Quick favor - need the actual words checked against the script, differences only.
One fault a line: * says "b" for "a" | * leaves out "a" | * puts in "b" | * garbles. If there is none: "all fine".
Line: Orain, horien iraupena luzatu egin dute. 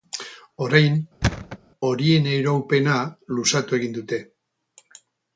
all fine